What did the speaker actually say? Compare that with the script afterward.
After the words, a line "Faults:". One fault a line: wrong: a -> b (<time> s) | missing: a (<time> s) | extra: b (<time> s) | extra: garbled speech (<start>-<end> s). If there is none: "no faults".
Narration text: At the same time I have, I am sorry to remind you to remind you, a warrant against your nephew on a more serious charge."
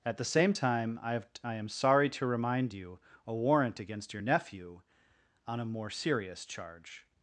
At the same time I have, I am sorry to remind you, a warrant against your nephew on a more serious charge."
Faults:
missing: to remind you (3.0 s)